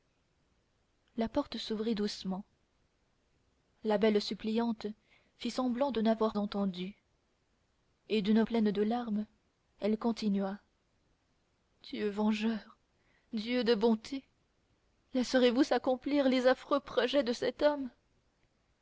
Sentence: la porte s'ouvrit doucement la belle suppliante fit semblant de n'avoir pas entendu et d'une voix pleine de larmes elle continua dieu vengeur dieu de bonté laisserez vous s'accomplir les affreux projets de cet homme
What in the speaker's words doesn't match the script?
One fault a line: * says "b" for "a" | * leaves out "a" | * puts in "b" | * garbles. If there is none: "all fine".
* leaves out "pas"
* leaves out "voix"